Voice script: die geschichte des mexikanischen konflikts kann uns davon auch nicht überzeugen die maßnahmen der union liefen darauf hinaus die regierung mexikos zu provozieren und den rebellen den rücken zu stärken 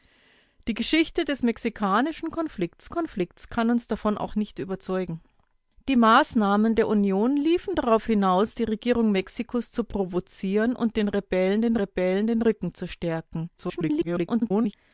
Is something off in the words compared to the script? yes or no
yes